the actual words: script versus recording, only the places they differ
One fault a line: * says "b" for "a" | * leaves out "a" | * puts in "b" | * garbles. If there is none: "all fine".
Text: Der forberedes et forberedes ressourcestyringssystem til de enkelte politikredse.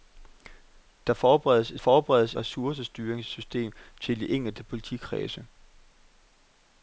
all fine